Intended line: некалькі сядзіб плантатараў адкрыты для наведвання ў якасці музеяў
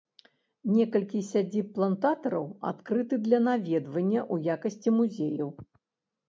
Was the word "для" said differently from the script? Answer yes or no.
no